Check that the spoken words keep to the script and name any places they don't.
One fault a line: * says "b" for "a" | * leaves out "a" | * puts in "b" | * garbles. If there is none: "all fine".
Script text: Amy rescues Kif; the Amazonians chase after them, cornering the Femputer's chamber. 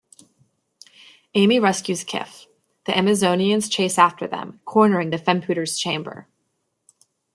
all fine